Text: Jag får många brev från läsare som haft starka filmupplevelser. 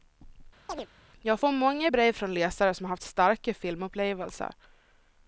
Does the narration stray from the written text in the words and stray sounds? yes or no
yes